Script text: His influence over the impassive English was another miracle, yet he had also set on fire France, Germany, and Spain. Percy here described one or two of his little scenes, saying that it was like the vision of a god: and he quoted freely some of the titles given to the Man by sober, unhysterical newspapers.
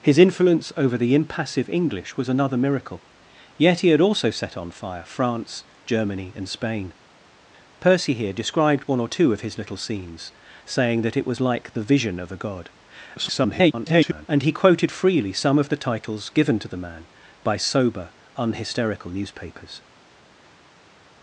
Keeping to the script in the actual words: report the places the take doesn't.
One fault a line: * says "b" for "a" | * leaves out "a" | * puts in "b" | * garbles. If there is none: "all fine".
* garbles